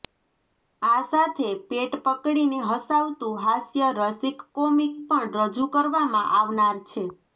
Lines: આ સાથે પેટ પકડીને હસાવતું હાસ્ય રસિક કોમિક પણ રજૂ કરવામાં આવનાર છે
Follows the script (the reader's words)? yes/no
yes